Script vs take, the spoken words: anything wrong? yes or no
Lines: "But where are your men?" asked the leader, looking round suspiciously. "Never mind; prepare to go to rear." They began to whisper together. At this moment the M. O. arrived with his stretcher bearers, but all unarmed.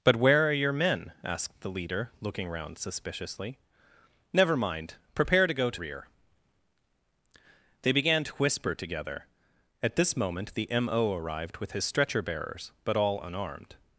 no